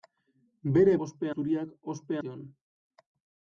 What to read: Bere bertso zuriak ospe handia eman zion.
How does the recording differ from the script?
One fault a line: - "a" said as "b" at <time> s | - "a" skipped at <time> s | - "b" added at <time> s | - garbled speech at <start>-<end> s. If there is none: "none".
- "bertso" said as "ospe" at 1.1 s
- "handia eman" skipped at 2.2 s